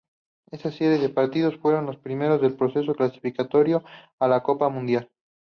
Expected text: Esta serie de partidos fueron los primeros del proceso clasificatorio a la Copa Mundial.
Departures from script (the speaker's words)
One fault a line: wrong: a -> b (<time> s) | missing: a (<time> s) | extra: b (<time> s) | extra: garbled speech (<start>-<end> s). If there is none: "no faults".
no faults